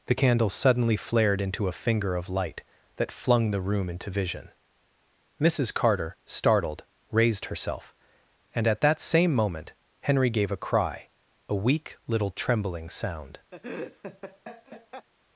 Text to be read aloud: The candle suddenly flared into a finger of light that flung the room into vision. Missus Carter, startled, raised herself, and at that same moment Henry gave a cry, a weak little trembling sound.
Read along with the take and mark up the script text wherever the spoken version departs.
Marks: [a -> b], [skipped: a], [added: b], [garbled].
The candle suddenly flared into a finger of light that flung the room into vision. Missus Carter, startled, raised herself, and at that same moment Henry gave a cry, a weak little trembling sound.